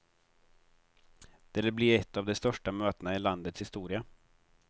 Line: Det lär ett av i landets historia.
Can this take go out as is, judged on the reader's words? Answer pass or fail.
fail